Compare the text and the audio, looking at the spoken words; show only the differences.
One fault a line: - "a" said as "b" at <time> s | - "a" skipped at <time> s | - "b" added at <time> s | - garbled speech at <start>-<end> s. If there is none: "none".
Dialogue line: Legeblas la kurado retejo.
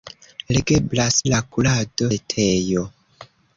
none